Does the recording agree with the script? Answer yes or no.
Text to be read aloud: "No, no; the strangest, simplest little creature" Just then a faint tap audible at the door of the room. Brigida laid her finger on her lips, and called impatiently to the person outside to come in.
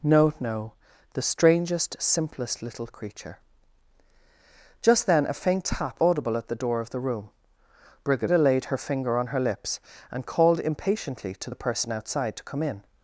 yes